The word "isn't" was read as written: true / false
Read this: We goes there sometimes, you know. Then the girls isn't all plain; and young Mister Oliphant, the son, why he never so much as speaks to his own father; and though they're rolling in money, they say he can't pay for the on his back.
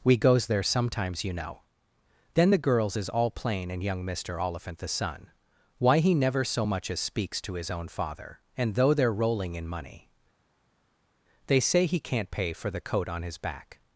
false